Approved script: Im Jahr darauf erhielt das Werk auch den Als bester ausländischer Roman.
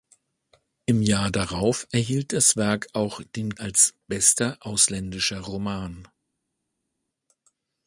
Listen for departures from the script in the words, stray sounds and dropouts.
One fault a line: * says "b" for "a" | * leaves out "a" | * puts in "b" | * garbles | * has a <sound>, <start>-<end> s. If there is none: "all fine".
all fine